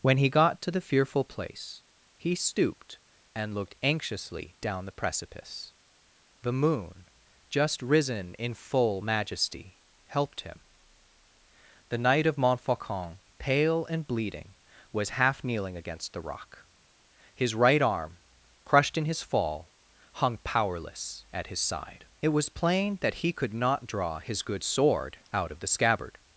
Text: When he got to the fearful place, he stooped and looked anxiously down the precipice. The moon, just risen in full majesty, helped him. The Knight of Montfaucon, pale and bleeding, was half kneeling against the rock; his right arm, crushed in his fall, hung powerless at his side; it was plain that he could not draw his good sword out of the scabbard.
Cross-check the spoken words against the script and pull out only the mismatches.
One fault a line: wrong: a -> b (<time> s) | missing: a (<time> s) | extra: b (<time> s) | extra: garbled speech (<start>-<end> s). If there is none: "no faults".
no faults